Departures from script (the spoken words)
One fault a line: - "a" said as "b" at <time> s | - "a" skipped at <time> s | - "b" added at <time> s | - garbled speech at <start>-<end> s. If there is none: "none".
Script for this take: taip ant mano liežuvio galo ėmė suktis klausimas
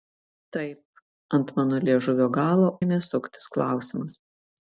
none